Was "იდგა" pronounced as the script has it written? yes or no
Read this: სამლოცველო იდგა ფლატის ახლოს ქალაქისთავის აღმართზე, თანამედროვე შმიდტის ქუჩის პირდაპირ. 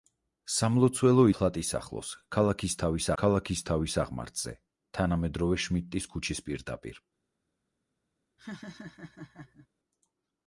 no